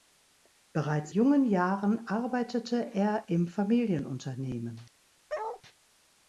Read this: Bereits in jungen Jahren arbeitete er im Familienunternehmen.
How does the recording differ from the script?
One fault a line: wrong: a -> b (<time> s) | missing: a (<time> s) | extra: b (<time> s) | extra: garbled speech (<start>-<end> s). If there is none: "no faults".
missing: in (1.1 s)